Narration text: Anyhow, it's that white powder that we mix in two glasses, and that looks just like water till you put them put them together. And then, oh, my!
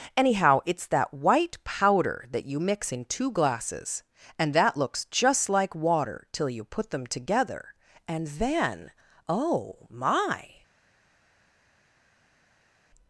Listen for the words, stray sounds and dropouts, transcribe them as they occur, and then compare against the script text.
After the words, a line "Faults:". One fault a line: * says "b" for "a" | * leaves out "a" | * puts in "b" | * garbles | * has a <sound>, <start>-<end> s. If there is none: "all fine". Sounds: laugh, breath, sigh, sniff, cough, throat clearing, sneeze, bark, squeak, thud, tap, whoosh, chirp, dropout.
Anyhow, it's that white powder that you mix in two glasses, and that looks just like water till you put them together. And then, oh, my!
Faults:
* says "you" for "we"
* leaves out "put them"